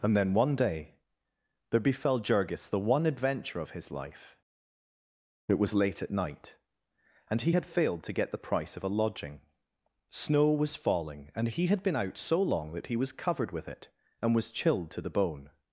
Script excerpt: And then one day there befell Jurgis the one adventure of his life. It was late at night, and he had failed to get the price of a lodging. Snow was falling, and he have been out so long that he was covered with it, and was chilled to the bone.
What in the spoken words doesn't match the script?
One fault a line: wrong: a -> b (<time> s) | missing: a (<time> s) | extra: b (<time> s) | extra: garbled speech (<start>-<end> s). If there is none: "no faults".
wrong: have -> had (11.7 s)